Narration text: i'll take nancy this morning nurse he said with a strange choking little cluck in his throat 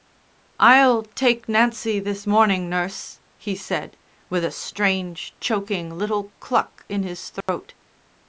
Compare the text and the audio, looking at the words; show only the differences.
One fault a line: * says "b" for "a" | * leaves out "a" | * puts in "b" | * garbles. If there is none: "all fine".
all fine